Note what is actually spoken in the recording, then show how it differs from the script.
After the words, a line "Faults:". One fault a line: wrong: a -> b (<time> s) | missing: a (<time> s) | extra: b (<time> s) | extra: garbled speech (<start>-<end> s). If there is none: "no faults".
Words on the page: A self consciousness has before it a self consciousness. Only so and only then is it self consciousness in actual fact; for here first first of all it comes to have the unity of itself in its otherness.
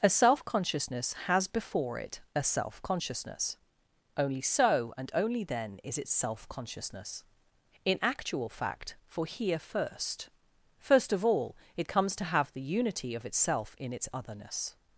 A self consciousness has before it a self consciousness. Only so and only then is it self consciousness in actual fact; for here first first of all it comes to have the unity of itself in its otherness.
Faults:
no faults